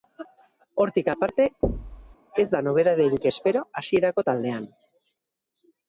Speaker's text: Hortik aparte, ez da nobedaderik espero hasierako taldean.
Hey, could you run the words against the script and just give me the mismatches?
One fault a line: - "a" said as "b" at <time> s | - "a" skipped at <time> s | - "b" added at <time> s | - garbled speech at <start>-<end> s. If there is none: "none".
none